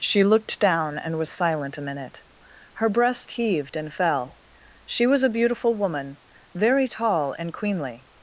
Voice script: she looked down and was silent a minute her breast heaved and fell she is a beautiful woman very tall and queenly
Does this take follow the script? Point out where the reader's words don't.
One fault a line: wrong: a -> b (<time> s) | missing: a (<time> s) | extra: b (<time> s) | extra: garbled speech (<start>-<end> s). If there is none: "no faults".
wrong: is -> was (5.0 s)